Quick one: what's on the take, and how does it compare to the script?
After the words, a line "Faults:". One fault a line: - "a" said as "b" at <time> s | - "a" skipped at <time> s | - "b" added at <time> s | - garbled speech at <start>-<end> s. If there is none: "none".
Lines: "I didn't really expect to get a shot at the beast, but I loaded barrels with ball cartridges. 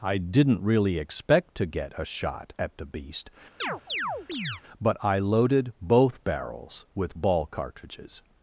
"I didn't really expect to get a shot at the beast, but I loaded both barrels with ball cartridges.
Faults:
- "both" added at 5.8 s